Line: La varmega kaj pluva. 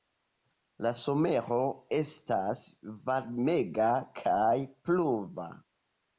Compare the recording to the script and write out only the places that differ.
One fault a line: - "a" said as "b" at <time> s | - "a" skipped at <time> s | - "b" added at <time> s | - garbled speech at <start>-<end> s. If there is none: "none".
- "somero estas" added at 1.0 s